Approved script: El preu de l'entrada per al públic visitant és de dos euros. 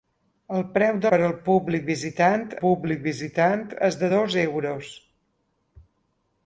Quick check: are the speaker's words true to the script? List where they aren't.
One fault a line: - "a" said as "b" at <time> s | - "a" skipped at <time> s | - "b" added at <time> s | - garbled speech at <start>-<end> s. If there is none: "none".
- "l'entrada" skipped at 1.1 s
- "públic visitant" added at 2.6 s